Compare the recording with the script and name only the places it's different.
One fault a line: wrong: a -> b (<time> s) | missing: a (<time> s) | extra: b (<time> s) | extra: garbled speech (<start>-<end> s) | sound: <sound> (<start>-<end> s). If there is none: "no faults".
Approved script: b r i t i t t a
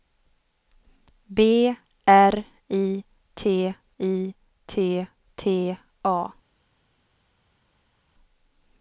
no faults